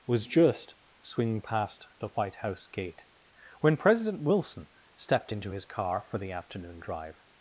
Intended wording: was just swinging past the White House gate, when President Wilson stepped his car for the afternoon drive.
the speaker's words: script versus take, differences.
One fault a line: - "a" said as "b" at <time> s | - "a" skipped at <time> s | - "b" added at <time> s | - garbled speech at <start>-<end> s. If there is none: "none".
- "into" added at 5.3 s